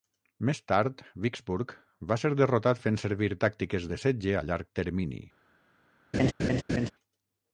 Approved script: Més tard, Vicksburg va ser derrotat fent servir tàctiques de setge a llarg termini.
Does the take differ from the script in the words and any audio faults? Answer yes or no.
yes